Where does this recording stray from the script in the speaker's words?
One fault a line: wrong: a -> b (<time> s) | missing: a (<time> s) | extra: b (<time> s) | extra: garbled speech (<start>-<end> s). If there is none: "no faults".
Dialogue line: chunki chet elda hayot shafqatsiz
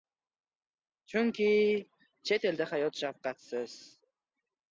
no faults